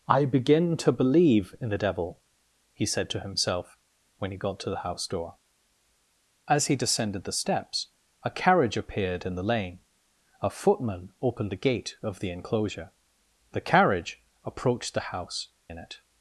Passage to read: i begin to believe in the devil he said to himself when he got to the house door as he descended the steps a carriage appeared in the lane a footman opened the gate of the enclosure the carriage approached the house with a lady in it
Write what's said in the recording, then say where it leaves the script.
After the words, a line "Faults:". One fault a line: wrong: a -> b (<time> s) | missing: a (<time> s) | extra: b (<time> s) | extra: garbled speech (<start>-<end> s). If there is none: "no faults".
i begin to believe in the devil he said to himself when he got to the house door as he descended the steps a carriage appeared in the lane a footman opened the gate of the enclosure the carriage approached the house in it
Faults:
missing: with a lady (15.5 s)